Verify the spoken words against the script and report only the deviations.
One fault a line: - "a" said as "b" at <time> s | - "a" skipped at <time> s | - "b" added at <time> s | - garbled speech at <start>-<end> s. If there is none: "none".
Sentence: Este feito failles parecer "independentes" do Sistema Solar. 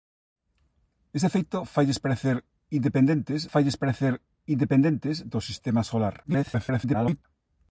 - "failles parecer independentes" added at 3.5 s
- garbled speech at 6.2-7.2 s